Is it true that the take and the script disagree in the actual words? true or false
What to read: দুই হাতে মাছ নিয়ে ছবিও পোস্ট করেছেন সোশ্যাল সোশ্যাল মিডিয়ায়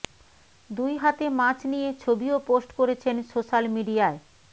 true